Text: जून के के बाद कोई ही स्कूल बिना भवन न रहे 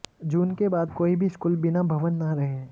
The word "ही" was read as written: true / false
false